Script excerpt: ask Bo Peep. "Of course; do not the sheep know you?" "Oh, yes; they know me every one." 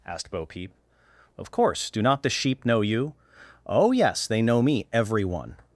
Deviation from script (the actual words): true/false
true